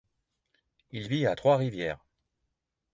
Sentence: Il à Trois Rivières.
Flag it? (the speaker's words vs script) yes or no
yes